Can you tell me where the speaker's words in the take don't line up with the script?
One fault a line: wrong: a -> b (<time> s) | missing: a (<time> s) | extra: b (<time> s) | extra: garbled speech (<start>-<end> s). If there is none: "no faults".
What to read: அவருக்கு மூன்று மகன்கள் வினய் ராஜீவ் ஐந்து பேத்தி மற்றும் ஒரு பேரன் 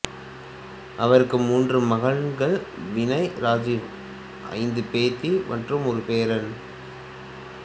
no faults